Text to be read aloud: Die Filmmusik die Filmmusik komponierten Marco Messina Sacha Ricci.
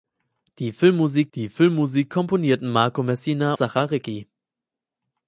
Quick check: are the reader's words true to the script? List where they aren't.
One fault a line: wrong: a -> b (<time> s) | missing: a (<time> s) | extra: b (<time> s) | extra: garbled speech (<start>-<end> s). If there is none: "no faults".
no faults